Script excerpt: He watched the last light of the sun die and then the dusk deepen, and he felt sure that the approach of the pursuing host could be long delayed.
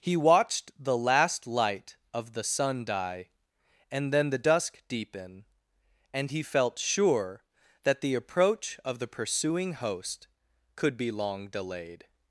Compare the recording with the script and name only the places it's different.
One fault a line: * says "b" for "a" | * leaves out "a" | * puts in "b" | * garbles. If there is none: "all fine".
all fine